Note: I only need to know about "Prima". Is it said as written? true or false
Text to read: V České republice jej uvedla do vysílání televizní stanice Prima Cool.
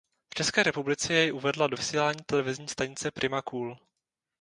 true